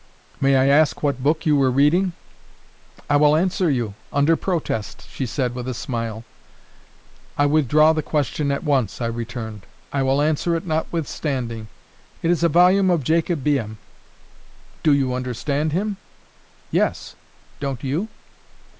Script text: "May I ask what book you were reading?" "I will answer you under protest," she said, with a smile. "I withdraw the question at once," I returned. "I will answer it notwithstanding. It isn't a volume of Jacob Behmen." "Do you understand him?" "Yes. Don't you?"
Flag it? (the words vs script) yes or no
yes